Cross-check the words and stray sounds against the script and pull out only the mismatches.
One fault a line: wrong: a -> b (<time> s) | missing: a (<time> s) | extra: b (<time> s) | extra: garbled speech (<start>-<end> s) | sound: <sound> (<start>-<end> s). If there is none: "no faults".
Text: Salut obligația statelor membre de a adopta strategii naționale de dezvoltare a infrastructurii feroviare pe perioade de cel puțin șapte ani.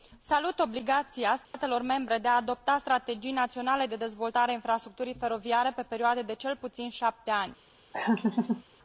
sound: dropout (1.4-1.5 s)
sound: laugh (7.9-8.6 s)